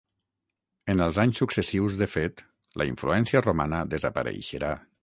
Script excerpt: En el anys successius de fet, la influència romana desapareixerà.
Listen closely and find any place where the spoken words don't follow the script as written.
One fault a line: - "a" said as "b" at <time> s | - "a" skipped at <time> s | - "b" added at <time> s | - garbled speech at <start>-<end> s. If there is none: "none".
- "el" said as "els" at 1.1 s